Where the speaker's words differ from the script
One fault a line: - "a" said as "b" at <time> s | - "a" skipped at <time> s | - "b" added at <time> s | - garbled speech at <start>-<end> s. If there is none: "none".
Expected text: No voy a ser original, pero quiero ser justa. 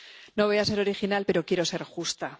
none